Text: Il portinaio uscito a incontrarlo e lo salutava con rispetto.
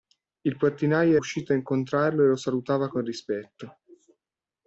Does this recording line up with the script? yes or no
yes